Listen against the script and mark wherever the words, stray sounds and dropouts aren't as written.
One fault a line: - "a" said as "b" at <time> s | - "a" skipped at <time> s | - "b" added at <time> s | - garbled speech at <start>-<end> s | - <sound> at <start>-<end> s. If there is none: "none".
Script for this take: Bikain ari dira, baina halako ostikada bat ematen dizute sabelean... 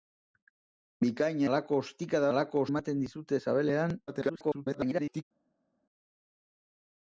- "ari dira baina" skipped at 1.4 s
- "bat" said as "halako" at 2.3 s
- garbled speech at 4.1-5.2 s